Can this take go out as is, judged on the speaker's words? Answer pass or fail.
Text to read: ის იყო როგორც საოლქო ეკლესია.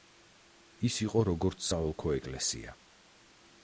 pass